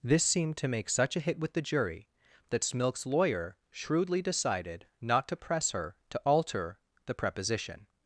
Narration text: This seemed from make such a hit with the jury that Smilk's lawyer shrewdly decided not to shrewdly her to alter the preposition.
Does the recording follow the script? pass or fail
fail